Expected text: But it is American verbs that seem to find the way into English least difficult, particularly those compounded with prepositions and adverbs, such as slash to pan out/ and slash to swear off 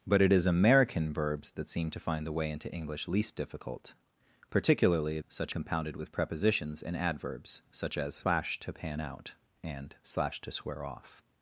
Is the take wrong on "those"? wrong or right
wrong